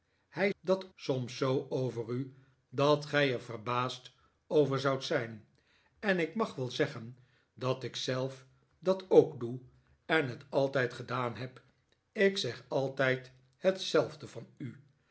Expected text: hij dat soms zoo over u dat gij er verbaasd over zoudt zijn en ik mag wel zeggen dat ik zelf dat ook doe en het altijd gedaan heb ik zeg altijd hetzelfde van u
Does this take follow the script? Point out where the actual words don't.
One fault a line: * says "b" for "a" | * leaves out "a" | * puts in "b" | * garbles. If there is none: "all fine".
all fine